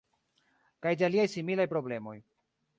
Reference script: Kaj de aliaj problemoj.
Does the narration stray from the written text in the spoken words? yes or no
yes